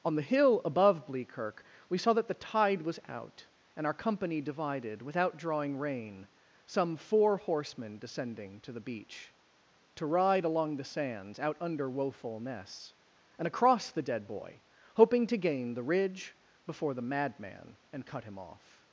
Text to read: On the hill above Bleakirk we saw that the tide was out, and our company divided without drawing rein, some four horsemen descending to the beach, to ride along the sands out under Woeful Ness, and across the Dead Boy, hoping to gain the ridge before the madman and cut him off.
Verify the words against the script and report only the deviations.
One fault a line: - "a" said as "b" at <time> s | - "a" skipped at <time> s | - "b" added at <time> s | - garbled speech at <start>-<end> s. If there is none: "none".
none